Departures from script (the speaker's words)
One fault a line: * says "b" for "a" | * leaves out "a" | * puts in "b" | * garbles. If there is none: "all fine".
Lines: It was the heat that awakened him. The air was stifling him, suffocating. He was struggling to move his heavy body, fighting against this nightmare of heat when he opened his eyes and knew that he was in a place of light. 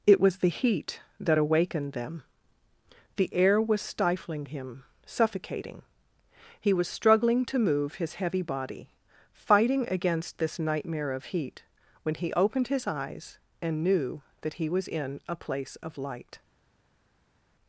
* says "them" for "him"